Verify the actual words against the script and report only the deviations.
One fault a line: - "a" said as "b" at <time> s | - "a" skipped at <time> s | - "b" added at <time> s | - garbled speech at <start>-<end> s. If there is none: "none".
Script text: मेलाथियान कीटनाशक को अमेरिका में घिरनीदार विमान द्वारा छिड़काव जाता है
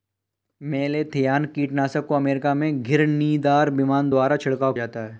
none